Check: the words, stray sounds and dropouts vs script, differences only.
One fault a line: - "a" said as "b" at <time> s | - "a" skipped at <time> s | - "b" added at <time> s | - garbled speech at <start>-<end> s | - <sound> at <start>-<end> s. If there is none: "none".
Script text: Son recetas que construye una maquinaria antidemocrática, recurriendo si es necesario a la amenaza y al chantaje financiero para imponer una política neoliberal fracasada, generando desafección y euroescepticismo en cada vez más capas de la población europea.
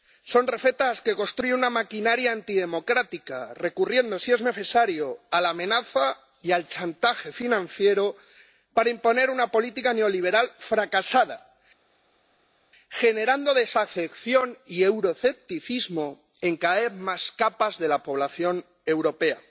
none